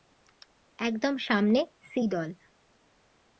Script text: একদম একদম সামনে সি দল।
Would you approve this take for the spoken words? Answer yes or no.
no